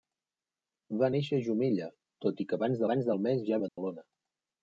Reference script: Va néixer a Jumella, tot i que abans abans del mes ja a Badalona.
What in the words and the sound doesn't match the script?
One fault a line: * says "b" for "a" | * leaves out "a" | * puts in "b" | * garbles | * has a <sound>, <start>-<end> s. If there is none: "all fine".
* has a dropout, 3.7-3.8 s